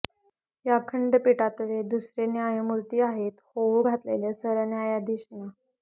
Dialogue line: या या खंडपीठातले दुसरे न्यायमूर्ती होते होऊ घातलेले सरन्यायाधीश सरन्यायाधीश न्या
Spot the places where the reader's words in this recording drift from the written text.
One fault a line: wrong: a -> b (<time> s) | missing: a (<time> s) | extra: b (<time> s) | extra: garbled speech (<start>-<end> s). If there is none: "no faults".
missing: या (0.8 s)
wrong: होते -> आहेत (3.0 s)
missing: सरन्यायाधीश (5.3 s)